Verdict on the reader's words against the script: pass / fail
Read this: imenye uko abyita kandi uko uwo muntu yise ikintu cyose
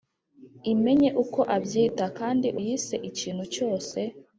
fail